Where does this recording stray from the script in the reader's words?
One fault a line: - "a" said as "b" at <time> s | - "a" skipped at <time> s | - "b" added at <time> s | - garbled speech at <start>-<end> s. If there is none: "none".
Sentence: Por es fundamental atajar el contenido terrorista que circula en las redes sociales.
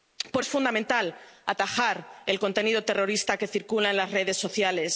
none